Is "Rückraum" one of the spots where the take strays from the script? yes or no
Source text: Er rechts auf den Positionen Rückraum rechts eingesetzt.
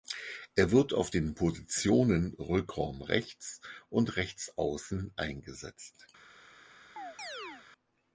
no